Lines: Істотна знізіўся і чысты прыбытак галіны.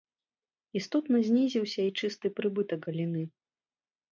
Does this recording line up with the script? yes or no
yes